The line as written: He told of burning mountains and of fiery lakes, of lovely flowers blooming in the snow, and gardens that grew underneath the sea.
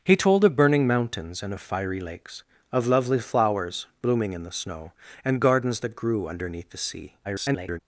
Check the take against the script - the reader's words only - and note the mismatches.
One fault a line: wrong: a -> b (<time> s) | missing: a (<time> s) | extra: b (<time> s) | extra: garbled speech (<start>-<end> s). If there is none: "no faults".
extra: garbled speech (7.2-7.8 s)